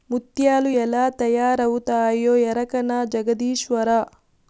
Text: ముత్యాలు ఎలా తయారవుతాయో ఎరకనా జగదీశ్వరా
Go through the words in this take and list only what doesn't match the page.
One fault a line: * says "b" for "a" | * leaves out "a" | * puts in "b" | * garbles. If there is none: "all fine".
all fine